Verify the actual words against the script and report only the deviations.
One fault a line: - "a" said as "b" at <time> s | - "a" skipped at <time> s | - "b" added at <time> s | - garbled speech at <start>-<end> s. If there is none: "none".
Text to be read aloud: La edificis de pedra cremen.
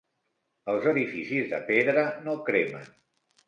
- "La" said as "Els" at 0.7 s
- "no" added at 2.3 s